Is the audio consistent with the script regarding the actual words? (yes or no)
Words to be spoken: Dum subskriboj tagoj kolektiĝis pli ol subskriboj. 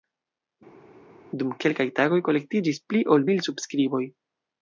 no